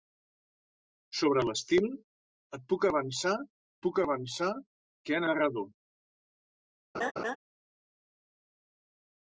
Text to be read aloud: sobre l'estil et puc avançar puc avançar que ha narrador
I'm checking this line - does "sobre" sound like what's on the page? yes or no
yes